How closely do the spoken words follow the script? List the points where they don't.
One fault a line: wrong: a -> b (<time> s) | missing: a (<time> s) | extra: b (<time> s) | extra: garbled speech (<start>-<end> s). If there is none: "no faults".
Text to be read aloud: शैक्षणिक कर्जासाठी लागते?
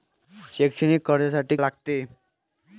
no faults